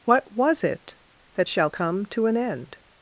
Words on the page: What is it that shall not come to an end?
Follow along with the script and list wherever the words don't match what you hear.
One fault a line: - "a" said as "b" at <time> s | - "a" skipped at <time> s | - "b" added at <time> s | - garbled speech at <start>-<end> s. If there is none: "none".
- "is" said as "was" at 0.3 s
- "not" skipped at 1.7 s